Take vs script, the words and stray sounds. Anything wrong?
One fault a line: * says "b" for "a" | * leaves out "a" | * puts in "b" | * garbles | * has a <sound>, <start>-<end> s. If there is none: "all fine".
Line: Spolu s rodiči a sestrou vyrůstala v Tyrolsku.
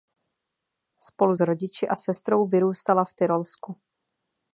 all fine